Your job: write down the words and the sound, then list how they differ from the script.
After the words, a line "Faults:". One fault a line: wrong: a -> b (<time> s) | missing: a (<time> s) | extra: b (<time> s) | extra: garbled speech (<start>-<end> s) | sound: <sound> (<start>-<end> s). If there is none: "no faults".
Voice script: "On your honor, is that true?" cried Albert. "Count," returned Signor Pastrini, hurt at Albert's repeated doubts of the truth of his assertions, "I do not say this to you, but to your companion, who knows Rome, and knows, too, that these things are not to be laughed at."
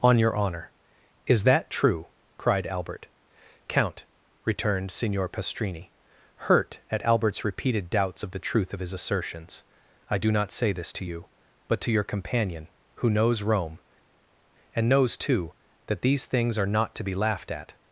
"On your honor, is that true?" cried Albert. "Count," returned Signor Pastrini, hurt at Albert's repeated doubts of the truth of his assertions, "I do not say this to you, but to your companion, who knows Rome, and knows, too, that these things are not to be laughed at."
Faults:
no faults